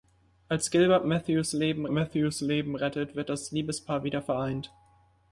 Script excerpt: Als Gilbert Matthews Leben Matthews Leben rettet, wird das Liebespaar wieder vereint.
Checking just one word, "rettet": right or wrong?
right